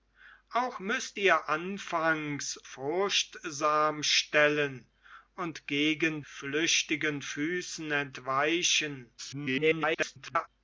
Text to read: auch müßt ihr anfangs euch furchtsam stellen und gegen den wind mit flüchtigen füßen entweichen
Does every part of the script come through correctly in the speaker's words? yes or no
no